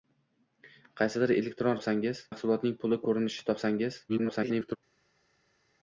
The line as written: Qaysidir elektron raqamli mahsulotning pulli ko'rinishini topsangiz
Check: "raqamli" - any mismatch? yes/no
yes